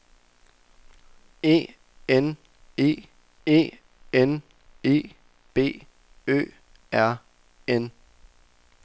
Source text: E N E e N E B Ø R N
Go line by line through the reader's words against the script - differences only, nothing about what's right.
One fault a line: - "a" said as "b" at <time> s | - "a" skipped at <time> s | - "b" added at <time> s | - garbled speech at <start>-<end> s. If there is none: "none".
none